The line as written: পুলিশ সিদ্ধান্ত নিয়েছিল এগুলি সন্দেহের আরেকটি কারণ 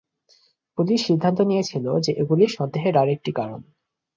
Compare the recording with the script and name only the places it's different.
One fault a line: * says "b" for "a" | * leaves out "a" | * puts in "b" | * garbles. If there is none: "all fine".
* puts in "যে"